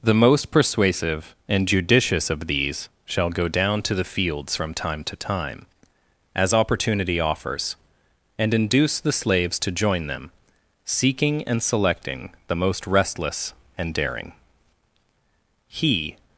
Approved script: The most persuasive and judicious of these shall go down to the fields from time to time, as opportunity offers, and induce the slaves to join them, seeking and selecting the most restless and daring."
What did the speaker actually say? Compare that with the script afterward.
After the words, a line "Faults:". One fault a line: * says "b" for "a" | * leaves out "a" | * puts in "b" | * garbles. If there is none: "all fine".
The most persuasive and judicious of these shall go down to the fields from time to time, as opportunity offers, and induce the slaves to join them, seeking and selecting the most restless and daring." He
Faults:
* puts in "He"